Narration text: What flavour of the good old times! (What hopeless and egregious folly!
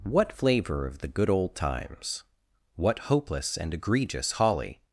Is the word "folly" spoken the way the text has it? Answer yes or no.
no